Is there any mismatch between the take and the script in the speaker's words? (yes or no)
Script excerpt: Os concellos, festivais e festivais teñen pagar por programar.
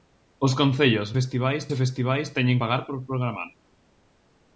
no